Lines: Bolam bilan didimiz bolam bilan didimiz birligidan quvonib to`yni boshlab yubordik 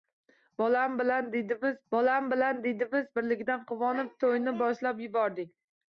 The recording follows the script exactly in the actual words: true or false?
true